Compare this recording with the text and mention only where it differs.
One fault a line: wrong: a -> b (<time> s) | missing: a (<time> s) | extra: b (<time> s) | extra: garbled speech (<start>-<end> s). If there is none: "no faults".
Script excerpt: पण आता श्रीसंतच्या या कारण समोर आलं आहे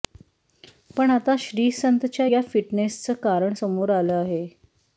extra: फिटनेसचं (2.5 s)